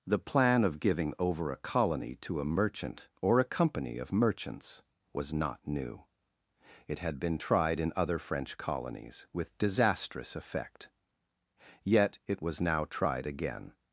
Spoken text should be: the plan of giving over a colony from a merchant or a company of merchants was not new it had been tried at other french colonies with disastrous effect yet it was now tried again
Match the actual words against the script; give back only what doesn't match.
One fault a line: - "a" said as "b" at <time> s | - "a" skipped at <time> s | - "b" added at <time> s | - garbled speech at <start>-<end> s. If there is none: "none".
- "from" said as "to" at 2.2 s
- "at" said as "in" at 7.8 s